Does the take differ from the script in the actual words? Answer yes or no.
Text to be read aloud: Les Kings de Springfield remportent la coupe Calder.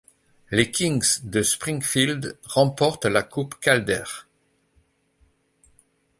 no